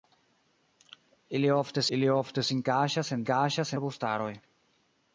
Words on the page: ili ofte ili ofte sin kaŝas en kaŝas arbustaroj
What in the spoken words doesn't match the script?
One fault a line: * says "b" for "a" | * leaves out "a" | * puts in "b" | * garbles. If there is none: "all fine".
all fine